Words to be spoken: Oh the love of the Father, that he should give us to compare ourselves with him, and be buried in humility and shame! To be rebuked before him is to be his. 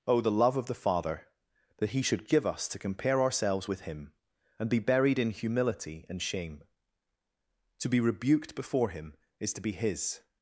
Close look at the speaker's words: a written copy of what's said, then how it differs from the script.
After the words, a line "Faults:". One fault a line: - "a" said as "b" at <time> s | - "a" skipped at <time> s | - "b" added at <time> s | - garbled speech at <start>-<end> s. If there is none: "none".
Oh the love of the Father, that he should give us to compare ourselves with him, and be buried in humility and shame! To be rebuked before him is to be his.
Faults:
none